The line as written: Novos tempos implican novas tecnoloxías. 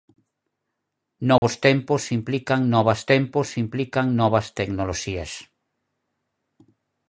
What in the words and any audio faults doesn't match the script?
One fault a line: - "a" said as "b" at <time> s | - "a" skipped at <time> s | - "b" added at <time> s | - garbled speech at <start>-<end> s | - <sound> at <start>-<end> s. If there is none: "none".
- dropout at 1.4-1.4 s
- "tempos implican novas" added at 3.1 s